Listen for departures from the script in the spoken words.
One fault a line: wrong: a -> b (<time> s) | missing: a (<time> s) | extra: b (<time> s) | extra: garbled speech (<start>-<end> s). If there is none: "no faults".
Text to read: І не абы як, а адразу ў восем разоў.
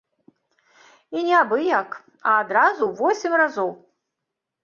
no faults